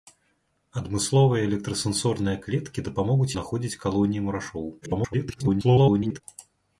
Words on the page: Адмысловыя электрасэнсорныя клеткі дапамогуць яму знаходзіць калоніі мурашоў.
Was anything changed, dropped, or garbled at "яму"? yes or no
yes